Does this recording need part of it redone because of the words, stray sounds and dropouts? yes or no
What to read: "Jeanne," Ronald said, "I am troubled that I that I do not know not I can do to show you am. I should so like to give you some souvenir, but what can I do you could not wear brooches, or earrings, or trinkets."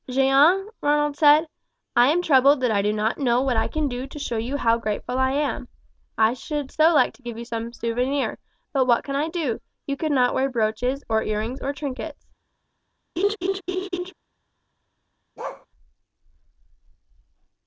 yes